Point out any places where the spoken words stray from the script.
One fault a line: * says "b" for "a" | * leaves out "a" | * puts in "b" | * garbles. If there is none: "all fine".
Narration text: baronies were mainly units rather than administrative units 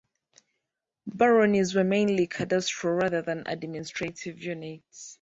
* says "cadastral" for "units"